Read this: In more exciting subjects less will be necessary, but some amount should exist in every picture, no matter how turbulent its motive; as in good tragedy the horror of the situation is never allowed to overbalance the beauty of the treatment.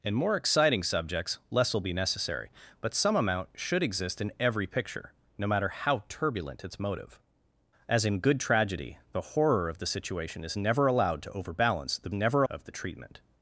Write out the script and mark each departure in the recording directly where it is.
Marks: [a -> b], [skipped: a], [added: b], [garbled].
In more exciting subjects less will be necessary, but some amount should exist in every picture, no matter how turbulent its motive; as in good tragedy the horror of the situation is never allowed to overbalance the [beauty -> never] of the treatment.